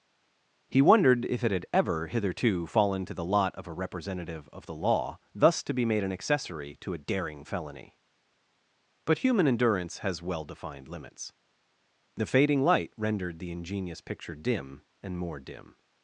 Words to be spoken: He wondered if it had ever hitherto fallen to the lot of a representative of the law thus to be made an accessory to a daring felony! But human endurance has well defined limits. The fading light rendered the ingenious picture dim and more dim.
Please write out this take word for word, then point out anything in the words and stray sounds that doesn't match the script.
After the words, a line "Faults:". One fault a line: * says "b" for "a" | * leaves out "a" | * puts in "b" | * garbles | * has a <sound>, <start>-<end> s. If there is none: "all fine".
He wondered if it had ever hitherto fallen to the lot of a representative of the law thus to be made an accessory to a daring felony! But human endurance has well defined limits. The fading light rendered the ingenious picture dim and more dim.
Faults:
all fine